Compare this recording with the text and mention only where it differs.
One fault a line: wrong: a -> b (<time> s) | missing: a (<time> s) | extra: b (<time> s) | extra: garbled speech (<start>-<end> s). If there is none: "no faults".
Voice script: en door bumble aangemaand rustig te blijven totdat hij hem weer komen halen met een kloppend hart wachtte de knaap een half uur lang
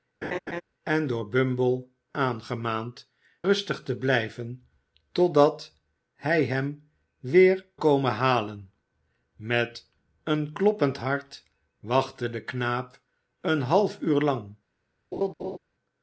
no faults